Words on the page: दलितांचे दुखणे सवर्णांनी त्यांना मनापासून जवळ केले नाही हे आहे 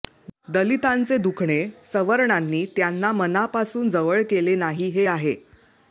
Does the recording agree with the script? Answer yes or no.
yes